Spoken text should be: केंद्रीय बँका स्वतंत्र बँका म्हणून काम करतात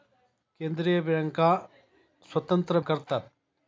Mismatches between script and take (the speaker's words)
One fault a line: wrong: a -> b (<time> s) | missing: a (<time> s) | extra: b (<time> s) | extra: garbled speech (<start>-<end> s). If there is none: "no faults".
missing: बँका म्हणून काम (2.8 s)